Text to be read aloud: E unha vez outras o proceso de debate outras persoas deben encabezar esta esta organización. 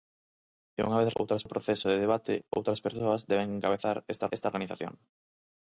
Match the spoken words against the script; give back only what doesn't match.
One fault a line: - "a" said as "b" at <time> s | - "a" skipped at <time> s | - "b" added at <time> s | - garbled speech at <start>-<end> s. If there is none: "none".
none